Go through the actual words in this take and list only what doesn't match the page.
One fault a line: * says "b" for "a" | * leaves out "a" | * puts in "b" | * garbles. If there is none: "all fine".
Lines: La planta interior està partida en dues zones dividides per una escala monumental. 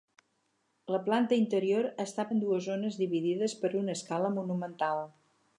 * leaves out "partida"